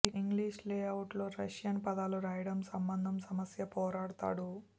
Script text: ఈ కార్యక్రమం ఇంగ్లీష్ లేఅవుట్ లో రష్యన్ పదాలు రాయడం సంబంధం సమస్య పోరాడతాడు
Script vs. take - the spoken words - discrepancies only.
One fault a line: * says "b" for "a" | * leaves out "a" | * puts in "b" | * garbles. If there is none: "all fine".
* leaves out "కార్యక్రమం"